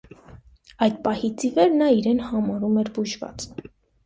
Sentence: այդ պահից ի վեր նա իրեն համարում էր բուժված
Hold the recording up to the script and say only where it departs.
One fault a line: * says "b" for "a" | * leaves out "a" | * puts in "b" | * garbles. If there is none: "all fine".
all fine